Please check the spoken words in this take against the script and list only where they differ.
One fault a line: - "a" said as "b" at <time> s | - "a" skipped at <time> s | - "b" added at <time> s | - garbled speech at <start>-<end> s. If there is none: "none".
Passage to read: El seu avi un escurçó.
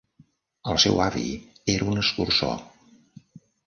- "era" added at 1.8 s